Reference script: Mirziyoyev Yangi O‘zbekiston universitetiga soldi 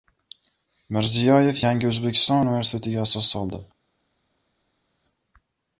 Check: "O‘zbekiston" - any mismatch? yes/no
no